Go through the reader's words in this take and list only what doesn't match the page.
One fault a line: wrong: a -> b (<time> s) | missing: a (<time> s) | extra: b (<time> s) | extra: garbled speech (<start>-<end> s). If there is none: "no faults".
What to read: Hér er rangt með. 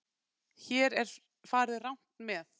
extra: farið (1.5 s)